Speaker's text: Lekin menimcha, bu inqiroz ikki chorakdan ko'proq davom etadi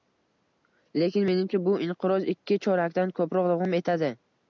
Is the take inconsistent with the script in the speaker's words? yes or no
no